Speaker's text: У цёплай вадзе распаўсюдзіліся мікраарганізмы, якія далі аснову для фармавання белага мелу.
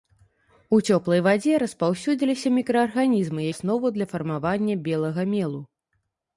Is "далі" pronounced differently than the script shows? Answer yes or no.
yes